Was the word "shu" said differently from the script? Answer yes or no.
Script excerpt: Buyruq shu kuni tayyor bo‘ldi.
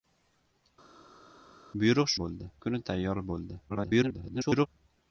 yes